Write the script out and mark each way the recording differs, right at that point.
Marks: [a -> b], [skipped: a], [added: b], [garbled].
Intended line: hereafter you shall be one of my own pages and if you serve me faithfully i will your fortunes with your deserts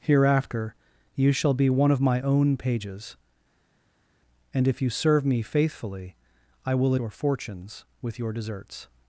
hereafter you shall be one of my own pages and if you serve me faithfully i will your fortunes with your deserts